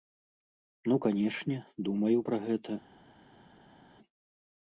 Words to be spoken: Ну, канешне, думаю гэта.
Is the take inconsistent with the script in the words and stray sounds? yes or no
yes